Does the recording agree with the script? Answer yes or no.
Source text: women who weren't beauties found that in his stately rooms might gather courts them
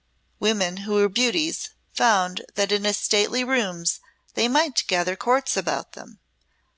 no